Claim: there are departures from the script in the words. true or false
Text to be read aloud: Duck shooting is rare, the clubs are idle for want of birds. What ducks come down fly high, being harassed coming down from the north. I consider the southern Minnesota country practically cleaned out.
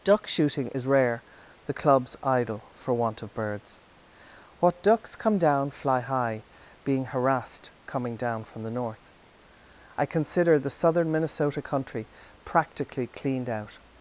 true